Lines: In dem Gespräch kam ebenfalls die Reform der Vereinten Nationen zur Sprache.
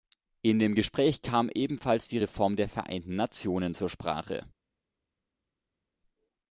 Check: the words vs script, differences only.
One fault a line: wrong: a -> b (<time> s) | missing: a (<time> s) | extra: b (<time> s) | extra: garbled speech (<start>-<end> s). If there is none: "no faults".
no faults